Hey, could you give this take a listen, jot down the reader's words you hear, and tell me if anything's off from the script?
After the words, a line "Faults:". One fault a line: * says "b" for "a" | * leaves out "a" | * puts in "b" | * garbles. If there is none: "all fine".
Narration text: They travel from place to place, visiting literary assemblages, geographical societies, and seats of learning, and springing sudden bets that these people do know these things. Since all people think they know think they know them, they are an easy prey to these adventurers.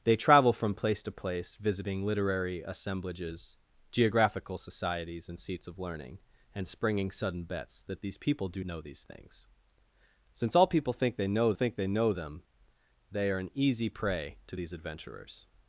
They travel from place to place, visiting literary assemblages, geographical societies, and seats of learning, and springing sudden bets that these people do know these things. Since all people think they know think they know them, they are an easy prey to these adventurers.
Faults:
all fine